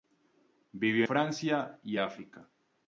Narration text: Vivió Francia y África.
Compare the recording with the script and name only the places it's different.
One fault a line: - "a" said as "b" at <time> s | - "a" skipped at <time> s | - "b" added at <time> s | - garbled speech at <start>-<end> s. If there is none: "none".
none